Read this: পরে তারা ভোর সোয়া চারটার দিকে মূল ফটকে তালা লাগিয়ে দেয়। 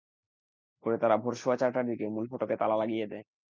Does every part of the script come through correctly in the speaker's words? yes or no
yes